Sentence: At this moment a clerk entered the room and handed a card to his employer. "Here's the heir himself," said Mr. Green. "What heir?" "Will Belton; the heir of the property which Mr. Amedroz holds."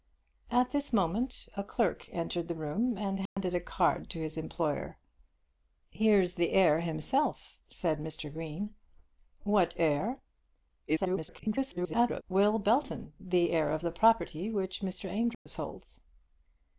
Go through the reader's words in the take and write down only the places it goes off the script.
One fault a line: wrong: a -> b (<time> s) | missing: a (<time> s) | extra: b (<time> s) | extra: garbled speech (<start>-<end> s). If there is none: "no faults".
extra: garbled speech (10.9-12.2 s)